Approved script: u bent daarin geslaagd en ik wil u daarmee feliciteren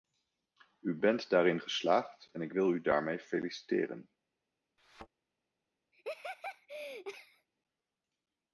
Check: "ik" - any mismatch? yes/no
no